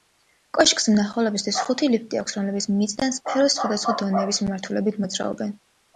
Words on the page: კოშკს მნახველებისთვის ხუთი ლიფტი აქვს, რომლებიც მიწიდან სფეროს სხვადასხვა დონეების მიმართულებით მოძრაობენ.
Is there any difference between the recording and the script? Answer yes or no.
no